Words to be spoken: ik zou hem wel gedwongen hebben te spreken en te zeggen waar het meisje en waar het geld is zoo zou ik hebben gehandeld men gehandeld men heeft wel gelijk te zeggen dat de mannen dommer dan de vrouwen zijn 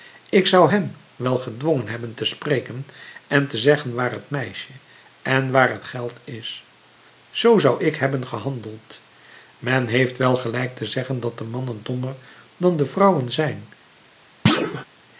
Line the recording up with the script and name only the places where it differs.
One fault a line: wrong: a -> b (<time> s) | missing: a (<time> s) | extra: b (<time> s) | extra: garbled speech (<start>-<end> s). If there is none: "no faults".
missing: gehandeld men (9.9 s)